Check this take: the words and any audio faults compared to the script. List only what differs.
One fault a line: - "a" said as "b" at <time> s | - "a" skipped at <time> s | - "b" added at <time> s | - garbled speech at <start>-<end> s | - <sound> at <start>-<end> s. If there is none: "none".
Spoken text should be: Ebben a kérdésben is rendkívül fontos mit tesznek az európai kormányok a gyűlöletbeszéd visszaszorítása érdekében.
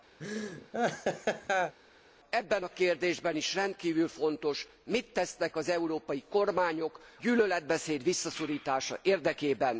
- laugh at 0.2-1.7 s
- "a" skipped at 7.0 s